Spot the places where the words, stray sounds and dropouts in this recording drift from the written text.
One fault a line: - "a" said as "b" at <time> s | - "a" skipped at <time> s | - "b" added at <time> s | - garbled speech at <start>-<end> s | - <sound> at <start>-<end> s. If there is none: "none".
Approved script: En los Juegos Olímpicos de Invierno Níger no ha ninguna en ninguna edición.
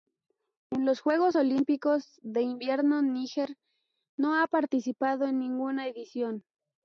- "ninguna" said as "participado" at 4.5 s